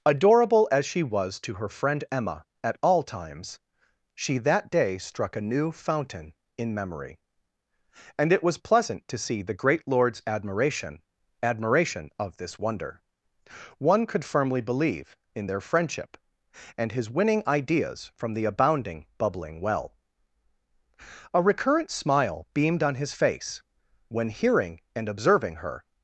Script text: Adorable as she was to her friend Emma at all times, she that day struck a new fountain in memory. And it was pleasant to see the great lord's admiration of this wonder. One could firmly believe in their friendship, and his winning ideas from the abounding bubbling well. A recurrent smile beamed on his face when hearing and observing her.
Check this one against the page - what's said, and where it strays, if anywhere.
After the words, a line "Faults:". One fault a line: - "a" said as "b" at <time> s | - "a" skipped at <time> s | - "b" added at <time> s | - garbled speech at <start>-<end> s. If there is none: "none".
Adorable as she was to her friend Emma at all times, she that day struck a new fountain in memory. And it was pleasant to see the great lord's admiration admiration of this wonder. One could firmly believe in their friendship, and his winning ideas from the abounding bubbling well. A recurrent smile beamed on his face when hearing and observing her.
Faults:
- "admiration" added at 11.4 s